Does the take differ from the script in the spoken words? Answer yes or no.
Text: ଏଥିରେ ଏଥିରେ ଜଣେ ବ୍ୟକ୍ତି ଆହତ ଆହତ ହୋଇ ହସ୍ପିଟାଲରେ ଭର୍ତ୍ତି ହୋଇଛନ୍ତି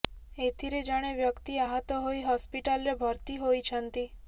yes